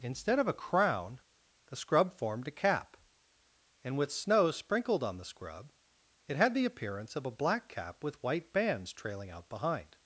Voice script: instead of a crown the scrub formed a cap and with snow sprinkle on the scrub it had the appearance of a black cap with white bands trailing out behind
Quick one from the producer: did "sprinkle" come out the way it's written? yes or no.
no